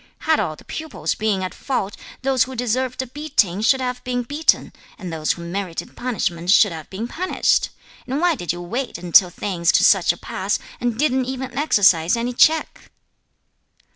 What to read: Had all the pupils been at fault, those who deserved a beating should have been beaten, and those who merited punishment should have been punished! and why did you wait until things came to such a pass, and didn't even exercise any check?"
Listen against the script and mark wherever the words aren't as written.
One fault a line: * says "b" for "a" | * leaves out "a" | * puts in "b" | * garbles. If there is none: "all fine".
* leaves out "came"